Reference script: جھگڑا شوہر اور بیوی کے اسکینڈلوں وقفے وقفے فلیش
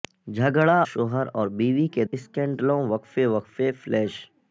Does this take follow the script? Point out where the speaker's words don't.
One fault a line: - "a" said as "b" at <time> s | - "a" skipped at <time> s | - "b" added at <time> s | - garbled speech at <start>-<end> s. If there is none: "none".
none